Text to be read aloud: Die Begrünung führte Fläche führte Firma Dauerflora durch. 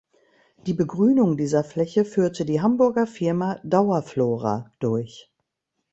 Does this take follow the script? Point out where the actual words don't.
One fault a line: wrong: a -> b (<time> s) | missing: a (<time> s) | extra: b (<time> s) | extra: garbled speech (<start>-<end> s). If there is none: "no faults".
wrong: führte -> dieser (1.4 s)
extra: die Hamburger (2.4 s)